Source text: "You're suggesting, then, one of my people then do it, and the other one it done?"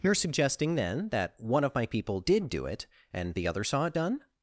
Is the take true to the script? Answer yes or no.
no